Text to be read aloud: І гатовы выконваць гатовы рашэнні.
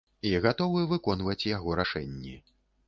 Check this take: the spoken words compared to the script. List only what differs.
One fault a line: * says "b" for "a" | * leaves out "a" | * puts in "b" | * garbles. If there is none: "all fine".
* says "яго" for "гатовы"